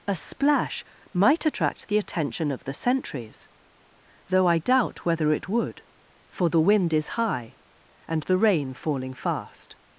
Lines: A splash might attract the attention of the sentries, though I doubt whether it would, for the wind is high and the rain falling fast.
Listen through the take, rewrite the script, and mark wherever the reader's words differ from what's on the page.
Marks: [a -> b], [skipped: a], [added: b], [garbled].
A splash might attract the attention of the sentries, though I doubt whether it would, for the wind is high and the rain falling fast.